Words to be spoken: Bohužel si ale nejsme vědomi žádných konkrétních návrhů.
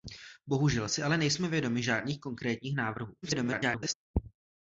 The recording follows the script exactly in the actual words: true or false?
false